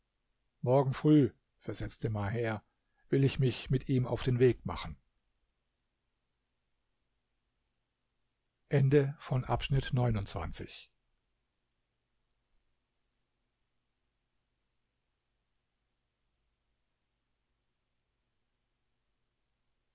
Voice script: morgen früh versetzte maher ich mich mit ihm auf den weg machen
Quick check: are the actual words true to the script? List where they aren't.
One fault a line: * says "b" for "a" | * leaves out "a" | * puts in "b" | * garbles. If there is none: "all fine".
* puts in "will"